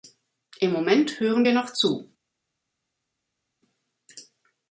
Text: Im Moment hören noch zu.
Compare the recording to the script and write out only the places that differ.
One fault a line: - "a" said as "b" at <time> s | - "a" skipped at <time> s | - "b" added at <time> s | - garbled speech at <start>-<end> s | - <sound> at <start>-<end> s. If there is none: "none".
- "wir" added at 1.4 s